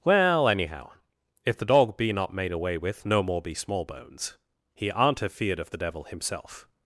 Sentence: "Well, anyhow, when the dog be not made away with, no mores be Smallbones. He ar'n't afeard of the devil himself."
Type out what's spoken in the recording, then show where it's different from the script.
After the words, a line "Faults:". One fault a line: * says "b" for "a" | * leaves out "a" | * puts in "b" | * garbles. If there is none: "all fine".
"Well, anyhow, if the dog be not made away with, no more be Smallbones. He ar'n't afeard of the devil himself."
Faults:
* says "if" for "when"
* says "more" for "mores"